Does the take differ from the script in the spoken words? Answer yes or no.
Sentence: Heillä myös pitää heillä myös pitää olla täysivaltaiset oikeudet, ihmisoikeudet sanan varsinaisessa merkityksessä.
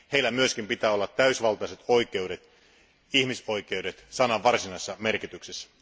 yes